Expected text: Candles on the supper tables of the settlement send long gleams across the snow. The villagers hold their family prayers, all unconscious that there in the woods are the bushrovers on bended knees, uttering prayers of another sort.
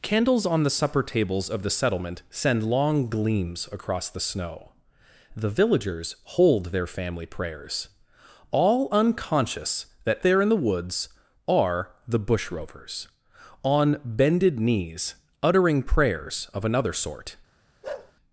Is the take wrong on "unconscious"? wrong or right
right